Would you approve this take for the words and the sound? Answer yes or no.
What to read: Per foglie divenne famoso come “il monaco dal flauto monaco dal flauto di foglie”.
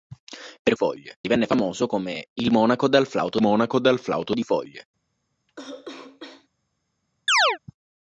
no